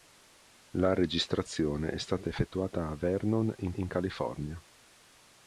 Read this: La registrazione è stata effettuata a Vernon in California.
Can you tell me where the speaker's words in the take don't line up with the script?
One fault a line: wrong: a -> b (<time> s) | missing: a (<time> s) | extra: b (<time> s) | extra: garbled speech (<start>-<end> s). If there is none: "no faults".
extra: in (3.7 s)